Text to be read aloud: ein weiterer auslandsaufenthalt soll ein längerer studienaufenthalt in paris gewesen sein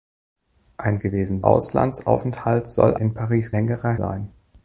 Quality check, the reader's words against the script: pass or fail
fail